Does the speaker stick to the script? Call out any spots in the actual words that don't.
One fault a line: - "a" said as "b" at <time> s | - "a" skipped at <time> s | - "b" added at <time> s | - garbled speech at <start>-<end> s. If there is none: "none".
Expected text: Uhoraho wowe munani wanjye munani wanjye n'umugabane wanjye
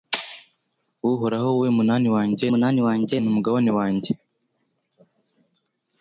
none